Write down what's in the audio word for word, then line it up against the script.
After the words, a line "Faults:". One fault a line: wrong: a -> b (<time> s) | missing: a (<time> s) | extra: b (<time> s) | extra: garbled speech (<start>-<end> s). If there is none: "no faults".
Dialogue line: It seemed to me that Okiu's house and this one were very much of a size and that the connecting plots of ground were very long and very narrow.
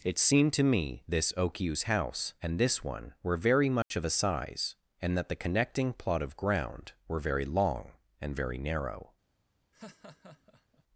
It seemed to me this Okiu's house and this one were very much of a size and that the connecting plot of ground were very long and very narrow.
Faults:
wrong: that -> this (1.1 s)
wrong: plots -> plot (5.9 s)